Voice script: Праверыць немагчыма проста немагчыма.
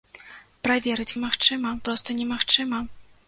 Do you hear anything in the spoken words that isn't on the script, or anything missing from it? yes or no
no